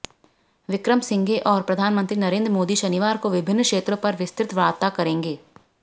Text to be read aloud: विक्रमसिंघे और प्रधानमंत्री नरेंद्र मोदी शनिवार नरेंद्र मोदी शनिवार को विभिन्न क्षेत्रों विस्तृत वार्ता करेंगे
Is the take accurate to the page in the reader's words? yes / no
no